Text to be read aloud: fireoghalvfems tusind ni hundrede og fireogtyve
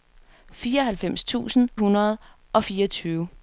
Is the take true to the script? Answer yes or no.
no